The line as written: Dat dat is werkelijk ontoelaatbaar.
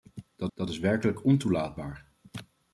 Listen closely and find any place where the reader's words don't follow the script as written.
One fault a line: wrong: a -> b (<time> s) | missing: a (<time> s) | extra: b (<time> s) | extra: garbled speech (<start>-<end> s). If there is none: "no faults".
no faults